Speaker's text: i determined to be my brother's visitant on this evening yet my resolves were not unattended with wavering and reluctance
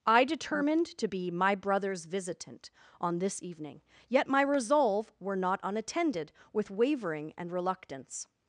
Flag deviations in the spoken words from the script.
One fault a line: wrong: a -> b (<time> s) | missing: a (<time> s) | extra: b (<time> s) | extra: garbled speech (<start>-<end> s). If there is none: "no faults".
wrong: resolves -> resolve (4.4 s)